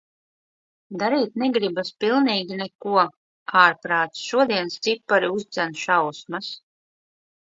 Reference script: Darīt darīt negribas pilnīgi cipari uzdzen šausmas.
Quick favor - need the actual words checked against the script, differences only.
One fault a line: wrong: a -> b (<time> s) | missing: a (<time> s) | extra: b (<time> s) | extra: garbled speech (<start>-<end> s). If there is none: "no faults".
missing: darīt (1.4 s)
extra: neko Ārprāts šodienas (2.6 s)